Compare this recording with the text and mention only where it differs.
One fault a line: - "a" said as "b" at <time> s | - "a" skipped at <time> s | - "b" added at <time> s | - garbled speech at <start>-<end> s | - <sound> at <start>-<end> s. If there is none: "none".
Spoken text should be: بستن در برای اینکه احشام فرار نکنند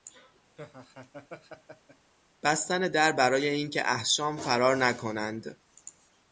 - laugh at 0.6-2.1 s